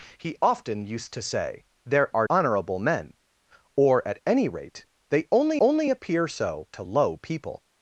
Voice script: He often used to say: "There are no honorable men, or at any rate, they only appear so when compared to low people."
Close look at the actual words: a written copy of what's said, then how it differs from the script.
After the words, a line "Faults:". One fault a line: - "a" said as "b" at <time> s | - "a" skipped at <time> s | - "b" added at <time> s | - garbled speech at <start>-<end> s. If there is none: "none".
He often used to say: "There are honorable men, or at any rate, they only only appear so to low people."
Faults:
- "no" skipped at 2.3 s
- "only" added at 5.6 s
- "when compared" skipped at 6.7 s